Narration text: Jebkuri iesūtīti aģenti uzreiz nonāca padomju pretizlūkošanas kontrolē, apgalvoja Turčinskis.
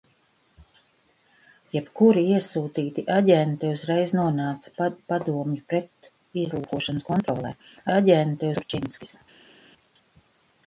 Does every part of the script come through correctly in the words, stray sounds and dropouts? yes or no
no